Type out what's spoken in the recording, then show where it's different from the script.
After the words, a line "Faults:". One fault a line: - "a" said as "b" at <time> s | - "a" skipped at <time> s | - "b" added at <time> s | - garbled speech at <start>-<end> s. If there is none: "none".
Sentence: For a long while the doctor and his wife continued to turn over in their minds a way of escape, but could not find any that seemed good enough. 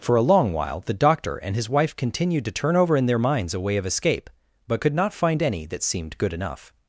For a long while the doctor and his wife continued to turn over in their minds a way of escape, but could not find any that seemed good enough.
Faults:
none